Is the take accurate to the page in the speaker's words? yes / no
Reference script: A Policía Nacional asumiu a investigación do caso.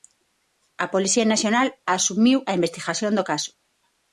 yes